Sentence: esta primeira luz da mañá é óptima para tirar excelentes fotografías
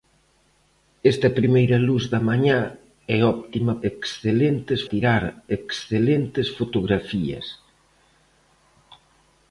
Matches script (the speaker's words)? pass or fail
fail